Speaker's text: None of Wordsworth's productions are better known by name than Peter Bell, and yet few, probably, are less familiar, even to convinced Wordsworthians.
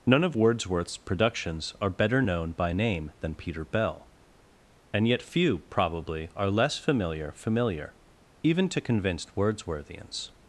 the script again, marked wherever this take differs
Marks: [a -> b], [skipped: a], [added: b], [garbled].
None of Wordsworth's productions are better known by name than Peter Bell, and yet few, probably, are less familiar, [added: familiar] even to convinced Wordsworthians.